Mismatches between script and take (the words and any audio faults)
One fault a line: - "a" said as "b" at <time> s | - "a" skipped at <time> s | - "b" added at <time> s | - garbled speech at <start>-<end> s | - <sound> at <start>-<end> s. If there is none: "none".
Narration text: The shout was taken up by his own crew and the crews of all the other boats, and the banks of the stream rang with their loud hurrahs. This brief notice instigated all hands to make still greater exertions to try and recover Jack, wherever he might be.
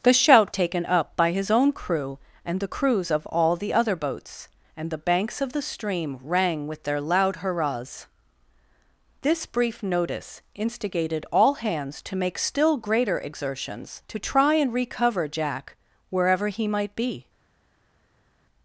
- "was" skipped at 0.6 s